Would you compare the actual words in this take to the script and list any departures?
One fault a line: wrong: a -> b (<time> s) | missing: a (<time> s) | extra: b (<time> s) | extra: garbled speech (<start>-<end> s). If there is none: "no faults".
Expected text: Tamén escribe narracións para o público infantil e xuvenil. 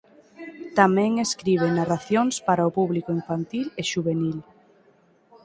no faults